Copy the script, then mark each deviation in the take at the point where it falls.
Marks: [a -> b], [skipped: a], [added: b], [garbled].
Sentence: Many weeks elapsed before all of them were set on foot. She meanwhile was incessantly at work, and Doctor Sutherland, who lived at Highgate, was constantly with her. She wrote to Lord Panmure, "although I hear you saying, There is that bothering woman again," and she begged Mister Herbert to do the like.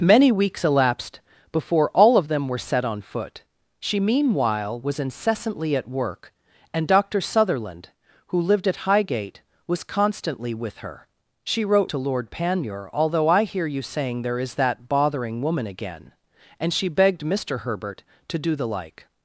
Many weeks elapsed before all of them were set on foot. She meanwhile was incessantly at work, and Doctor Sutherland, who lived at Highgate, was constantly with her. She wrote to Lord Panmure, "although I hear you saying, There is that bothering woman again," and she begged Mister Herbert to do the like.